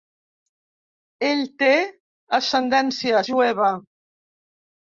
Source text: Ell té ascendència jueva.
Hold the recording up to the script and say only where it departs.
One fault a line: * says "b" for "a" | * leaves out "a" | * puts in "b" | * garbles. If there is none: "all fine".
all fine